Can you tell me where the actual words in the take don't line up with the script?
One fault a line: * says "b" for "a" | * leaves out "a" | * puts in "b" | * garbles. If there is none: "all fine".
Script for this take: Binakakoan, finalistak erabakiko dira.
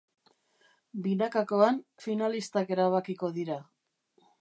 all fine